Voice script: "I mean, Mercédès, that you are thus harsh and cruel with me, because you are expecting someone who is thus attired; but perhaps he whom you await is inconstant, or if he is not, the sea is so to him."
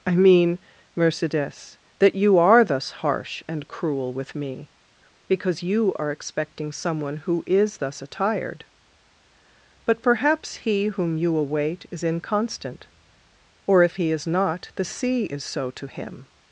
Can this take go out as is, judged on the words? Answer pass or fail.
pass